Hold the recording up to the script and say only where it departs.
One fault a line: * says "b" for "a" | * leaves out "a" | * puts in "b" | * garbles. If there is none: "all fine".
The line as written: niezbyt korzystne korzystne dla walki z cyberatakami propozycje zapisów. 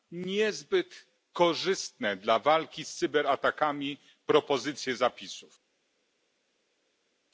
* leaves out "korzystne"